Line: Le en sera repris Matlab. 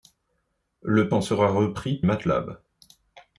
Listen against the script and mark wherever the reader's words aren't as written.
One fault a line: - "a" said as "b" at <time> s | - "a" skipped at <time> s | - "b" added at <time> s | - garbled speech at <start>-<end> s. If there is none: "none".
none